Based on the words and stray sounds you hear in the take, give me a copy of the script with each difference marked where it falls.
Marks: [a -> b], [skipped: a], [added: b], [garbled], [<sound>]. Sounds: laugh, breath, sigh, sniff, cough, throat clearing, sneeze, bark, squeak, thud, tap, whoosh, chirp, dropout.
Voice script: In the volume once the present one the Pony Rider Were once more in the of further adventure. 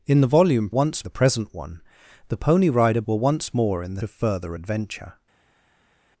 In the volume once the present one the Pony Rider Were once more in the of further adventure.